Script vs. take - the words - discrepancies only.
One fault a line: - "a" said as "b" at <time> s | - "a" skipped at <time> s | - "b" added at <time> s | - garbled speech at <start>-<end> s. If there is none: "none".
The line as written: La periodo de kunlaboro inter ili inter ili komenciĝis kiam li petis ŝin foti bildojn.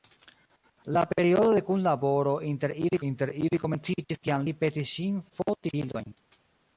none